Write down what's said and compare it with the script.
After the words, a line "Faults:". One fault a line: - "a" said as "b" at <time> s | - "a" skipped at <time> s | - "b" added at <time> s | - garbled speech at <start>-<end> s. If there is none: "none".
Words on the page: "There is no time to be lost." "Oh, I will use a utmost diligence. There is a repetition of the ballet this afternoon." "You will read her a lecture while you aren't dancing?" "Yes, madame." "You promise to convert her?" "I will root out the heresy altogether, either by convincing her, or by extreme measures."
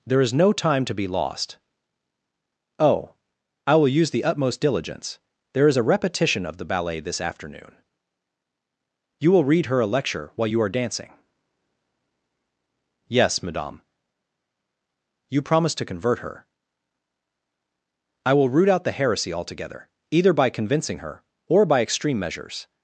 "There is no time to be lost." "Oh, I will use the utmost diligence. There is a repetition of the ballet this afternoon." "You will read her a lecture while you are dancing?" "Yes, madame." "You promise to convert her?" "I will root out the heresy altogether, either by convincing her, or by extreme measures."
Faults:
- "a" said as "the" at 4.1 s
- "aren't" said as "are" at 10.6 s